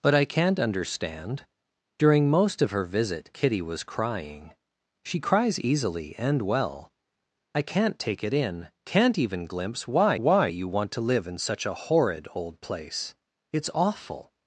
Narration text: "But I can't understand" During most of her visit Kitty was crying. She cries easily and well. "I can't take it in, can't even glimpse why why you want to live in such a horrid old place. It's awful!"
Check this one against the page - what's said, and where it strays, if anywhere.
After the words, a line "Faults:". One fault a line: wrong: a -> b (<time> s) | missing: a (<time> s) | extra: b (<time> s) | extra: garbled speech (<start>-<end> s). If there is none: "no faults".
"But I can't understand" During most of her visit Kitty was crying. She cries easily and well. "I can't take it in, can't even glimpse why why you want to live in such a horrid old place. It's awful!"
Faults:
no faults